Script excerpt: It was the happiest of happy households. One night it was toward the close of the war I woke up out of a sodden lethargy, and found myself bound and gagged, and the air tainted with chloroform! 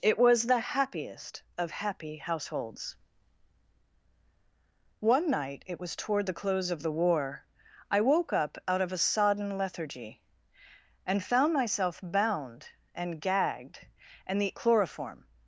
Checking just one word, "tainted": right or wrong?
wrong